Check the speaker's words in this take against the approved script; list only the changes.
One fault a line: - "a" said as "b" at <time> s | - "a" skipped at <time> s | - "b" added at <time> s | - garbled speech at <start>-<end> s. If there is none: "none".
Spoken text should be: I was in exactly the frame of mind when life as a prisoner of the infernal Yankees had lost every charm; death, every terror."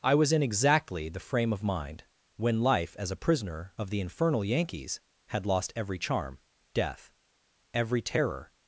none